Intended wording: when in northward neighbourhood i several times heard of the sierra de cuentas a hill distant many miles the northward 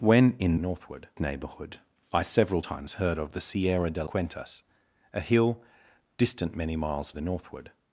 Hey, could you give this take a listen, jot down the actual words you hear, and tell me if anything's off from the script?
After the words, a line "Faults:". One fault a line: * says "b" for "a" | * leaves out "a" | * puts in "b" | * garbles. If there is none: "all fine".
when in northward neighbourhood i several times heard of the sierra de cuentas a hill distant many miles the northward
Faults:
all fine